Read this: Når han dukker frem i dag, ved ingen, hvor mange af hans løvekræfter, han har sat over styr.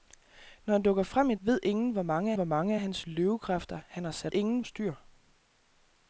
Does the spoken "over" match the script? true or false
false